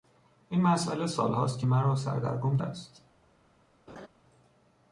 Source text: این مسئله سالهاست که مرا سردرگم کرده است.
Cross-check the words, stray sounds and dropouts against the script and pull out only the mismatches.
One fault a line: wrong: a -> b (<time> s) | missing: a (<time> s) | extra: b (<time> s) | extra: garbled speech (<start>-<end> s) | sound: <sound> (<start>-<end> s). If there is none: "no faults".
missing: کرده (2.6 s)
sound: laugh (3.9-4.1 s)